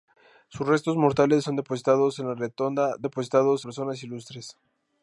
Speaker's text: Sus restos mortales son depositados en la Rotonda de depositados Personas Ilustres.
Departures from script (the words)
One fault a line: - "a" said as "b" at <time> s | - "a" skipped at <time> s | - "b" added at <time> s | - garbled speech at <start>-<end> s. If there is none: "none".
none